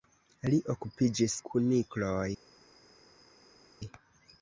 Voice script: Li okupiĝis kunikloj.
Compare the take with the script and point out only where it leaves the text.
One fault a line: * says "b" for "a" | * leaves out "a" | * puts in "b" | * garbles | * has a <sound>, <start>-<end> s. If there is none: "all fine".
all fine